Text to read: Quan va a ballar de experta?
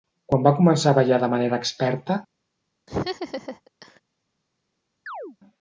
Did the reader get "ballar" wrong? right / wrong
right